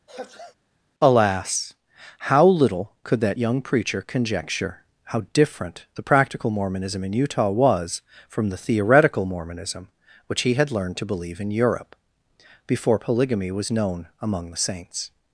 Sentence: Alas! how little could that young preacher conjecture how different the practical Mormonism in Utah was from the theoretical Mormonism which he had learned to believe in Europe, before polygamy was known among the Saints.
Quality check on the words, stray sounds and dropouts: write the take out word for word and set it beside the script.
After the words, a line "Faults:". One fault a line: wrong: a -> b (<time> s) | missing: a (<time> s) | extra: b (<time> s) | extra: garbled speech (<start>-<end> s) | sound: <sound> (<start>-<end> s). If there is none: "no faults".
Alas! how little could that young preacher conjecture how different the practical Mormonism in Utah was from the theoretical Mormonism which he had learned to believe in Europe, before polygamy was known among the Saints.
Faults:
sound: sneeze (0.1-0.6 s)